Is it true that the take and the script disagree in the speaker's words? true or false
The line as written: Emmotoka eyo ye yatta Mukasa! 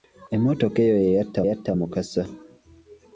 true